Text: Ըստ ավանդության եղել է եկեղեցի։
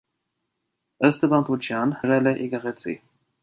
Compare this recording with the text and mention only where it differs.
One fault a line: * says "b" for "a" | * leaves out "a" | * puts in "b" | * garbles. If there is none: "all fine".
all fine